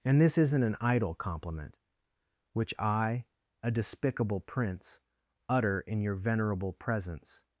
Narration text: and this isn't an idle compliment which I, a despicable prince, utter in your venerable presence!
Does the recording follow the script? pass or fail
pass